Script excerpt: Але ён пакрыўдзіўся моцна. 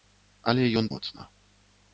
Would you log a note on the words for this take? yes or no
yes